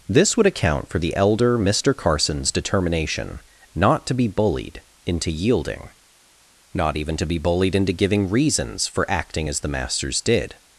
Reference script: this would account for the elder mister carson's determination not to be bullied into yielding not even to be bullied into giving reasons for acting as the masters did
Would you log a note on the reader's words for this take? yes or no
no